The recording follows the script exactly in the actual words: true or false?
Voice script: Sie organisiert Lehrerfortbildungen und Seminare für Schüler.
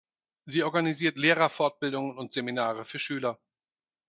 true